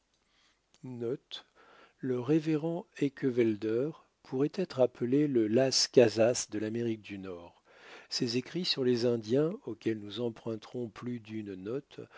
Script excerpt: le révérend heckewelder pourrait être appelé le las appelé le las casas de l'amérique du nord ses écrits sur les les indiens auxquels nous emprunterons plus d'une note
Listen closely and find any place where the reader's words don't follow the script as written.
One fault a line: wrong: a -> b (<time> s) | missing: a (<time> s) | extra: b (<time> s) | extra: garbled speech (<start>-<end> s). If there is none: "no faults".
missing: appelé le las (5.9 s)
missing: les (9.0 s)